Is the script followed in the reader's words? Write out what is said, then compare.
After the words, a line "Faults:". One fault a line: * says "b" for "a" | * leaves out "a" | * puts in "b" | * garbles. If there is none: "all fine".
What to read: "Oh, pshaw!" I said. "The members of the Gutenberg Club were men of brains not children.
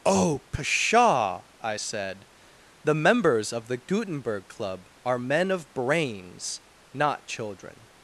"Oh, pshaw!" I said. "The members of the Gutenberg Club are men of brains not children.
Faults:
* says "are" for "were"